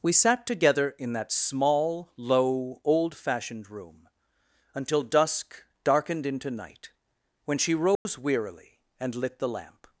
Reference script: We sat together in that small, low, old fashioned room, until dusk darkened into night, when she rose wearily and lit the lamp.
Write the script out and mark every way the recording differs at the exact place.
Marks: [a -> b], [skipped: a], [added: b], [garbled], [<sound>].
We sat together in that small, low, old fashioned room, until dusk darkened into night, when she rose [dropout] wearily and lit the lamp.